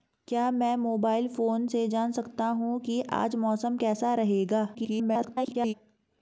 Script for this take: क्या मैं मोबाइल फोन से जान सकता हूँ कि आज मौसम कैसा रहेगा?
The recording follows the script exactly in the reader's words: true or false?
false